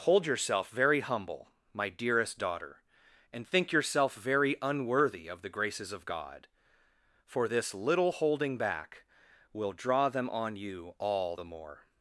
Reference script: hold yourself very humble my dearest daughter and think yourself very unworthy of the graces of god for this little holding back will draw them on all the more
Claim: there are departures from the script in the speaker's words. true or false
true